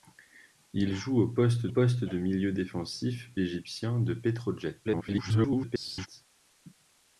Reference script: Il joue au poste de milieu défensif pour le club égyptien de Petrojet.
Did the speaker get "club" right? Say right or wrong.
wrong